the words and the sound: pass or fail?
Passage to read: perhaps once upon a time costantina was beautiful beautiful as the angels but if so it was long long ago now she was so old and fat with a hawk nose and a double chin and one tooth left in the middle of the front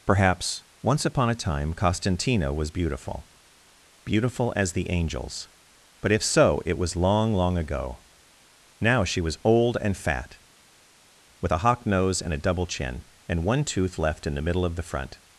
fail